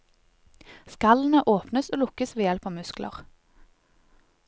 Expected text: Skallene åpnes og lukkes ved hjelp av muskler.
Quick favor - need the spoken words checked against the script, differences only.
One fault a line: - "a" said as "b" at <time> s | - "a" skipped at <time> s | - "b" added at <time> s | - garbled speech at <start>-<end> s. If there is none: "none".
none